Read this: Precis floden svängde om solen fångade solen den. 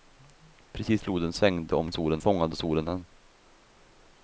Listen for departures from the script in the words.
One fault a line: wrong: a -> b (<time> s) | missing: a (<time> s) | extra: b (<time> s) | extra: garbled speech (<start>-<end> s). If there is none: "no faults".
no faults